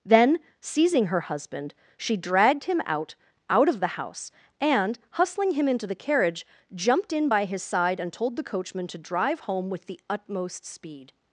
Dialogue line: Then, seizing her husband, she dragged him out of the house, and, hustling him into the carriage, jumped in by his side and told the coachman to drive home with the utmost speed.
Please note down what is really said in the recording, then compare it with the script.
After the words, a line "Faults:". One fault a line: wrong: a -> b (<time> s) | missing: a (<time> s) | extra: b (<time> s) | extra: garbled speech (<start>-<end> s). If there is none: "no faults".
Then, seizing her husband, she dragged him out out of the house, and, hustling him into the carriage, jumped in by his side and told the coachman to drive home with the utmost speed.
Faults:
extra: out (3.5 s)